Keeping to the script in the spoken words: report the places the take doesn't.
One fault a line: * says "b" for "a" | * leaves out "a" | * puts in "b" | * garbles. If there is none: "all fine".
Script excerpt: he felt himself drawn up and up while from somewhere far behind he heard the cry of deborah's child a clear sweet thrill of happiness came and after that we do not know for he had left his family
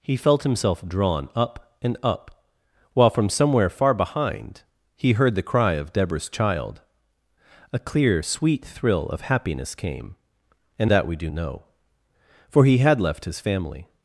* leaves out "after"
* leaves out "not"